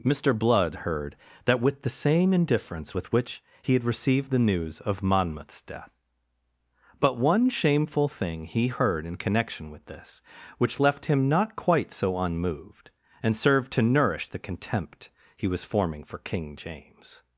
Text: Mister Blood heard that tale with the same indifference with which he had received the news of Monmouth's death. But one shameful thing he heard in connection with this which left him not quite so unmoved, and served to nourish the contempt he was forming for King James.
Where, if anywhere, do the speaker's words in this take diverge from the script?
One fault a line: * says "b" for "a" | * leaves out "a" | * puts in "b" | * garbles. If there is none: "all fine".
* leaves out "tale"